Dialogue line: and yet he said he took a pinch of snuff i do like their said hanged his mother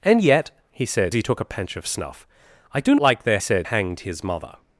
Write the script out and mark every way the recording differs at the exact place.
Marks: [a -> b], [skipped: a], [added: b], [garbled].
and yet he said he took a pinch of snuff i do like their said hanged his mother